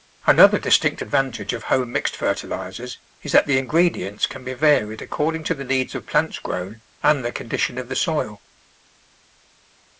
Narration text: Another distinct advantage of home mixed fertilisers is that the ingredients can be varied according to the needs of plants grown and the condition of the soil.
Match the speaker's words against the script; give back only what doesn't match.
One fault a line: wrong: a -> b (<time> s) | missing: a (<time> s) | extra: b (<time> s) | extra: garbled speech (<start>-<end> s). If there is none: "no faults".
no faults